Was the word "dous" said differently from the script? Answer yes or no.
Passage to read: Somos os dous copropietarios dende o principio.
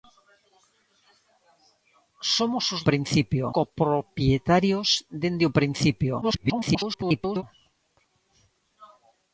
yes